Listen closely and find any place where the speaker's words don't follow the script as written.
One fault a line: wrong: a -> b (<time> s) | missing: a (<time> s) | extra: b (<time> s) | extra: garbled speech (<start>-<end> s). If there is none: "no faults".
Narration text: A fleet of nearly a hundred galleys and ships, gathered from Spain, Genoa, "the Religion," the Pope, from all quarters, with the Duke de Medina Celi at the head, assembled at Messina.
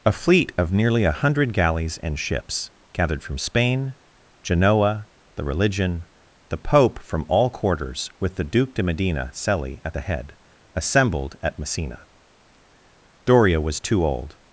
extra: Doria was too old (13.2 s)